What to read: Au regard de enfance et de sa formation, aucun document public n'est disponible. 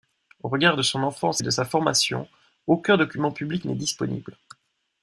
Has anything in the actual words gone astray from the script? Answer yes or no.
yes